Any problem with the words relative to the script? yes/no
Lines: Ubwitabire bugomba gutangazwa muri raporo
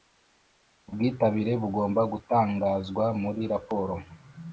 no